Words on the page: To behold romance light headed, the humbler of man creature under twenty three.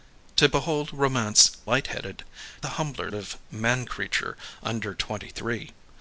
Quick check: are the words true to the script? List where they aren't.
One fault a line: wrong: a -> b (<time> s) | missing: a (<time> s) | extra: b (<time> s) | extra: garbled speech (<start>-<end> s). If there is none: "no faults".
no faults